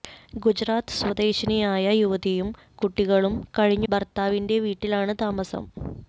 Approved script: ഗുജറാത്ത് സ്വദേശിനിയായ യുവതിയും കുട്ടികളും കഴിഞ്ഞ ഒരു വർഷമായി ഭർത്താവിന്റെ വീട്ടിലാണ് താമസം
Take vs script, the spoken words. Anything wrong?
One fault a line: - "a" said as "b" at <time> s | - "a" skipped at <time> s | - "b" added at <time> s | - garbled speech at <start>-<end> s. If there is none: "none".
- "ഒരു വർഷമായി" skipped at 3.9 s